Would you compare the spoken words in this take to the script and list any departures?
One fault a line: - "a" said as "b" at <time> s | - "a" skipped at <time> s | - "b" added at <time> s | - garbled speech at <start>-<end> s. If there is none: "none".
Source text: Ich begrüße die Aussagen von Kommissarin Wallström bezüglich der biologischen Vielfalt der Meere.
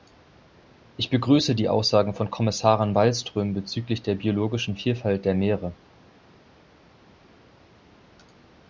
none